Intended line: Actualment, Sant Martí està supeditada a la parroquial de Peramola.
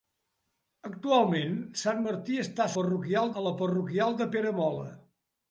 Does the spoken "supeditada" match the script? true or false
false